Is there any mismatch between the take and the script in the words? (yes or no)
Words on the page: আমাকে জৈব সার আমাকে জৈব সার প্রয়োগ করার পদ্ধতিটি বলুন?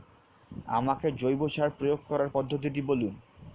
yes